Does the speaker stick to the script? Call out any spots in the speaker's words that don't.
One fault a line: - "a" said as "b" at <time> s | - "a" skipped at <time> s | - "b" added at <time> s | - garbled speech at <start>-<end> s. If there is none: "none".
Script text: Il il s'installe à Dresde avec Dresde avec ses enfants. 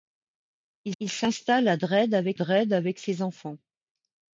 none